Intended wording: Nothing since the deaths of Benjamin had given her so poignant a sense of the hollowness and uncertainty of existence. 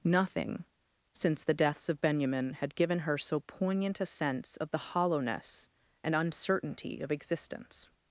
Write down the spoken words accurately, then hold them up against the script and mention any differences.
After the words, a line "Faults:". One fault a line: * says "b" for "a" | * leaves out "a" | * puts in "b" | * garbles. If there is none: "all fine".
Nothing since the deaths of Benjamin had given her so poignant a sense of the hollowness and uncertainty of existence.
Faults:
all fine